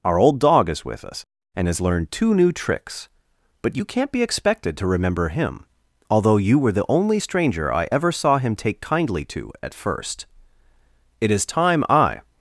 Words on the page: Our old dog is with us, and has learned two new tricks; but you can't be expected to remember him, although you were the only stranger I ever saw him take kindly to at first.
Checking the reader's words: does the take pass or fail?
fail